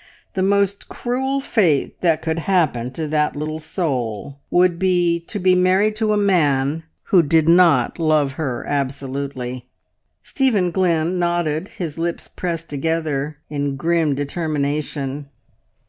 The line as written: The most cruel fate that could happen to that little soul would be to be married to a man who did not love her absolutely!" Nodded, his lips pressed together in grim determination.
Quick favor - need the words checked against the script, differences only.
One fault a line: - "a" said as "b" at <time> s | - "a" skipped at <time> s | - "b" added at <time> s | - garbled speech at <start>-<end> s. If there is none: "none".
- "Stephen Glynn" added at 10.2 s